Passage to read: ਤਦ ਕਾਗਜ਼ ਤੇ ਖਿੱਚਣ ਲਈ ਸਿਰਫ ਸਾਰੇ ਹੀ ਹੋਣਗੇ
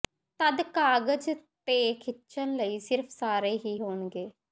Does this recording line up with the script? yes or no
yes